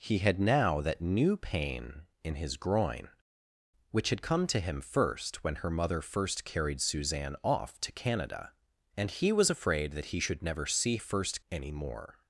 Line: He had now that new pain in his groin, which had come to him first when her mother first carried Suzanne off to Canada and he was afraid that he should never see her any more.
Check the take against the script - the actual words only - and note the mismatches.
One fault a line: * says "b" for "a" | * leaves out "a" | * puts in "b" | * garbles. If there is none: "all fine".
* says "first" for "her"